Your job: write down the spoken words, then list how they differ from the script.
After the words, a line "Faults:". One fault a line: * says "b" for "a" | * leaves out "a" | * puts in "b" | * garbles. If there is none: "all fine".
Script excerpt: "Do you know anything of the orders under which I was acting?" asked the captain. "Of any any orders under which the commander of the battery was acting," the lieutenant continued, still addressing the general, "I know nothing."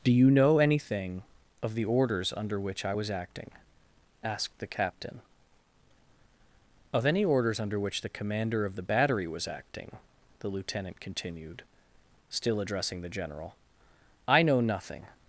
"Do you know anything of the orders under which I was acting?" asked the captain. "Of any orders under which the commander of the battery was acting," the lieutenant continued, still addressing the general, "I know nothing."
Faults:
* leaves out "any"